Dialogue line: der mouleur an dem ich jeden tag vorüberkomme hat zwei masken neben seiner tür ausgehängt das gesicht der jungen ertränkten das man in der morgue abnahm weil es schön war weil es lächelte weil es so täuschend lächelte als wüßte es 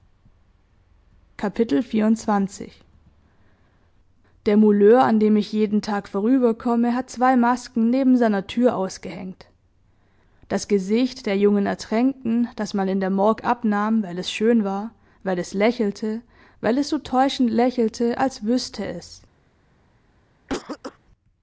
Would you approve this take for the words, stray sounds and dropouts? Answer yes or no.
no